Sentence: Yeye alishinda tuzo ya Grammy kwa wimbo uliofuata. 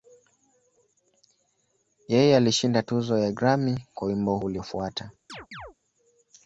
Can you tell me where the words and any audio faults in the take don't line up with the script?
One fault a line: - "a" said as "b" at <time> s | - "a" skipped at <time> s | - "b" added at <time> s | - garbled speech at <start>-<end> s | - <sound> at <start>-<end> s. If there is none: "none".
- chirp at 5.3-5.7 s